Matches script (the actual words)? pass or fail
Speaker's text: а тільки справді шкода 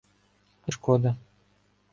fail